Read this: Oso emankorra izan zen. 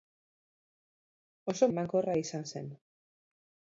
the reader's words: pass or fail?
pass